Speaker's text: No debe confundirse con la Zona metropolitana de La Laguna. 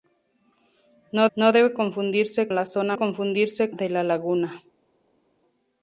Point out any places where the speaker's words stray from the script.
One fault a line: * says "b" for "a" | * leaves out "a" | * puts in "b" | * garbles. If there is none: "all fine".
* puts in "no"
* leaves out "con"
* says "confundirse" for "metropolitana"